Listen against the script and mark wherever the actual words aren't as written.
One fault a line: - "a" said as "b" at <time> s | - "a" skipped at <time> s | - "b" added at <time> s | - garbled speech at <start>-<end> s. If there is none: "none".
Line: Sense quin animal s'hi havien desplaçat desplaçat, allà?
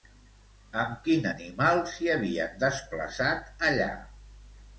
- "Sense" said as "Amb" at 0.8 s
- "desplaçat" skipped at 3.5 s